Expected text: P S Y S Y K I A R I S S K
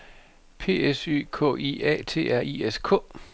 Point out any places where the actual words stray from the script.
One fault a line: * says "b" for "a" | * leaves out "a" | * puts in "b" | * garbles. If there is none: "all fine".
* leaves out "S Y"
* puts in "T"
* leaves out "S"